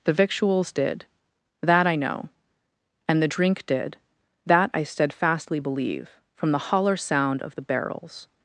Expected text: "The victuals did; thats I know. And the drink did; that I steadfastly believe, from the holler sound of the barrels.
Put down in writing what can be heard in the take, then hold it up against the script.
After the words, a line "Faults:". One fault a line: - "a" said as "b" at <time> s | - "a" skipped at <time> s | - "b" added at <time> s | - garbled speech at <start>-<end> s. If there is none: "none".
"The victuals did; that I know. And the drink did; that I steadfastly believe, from the holler sound of the barrels.
Faults:
- "thats" said as "that" at 1.6 s